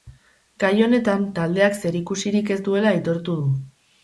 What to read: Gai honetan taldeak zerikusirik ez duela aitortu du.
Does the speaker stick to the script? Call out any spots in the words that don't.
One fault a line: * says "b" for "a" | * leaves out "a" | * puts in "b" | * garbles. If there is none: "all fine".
all fine